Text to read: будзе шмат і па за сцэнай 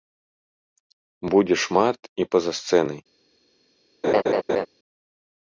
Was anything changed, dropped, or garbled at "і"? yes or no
no